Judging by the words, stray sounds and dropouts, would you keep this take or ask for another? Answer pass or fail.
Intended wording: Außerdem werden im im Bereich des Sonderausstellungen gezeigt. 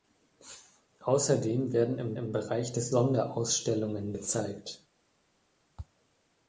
pass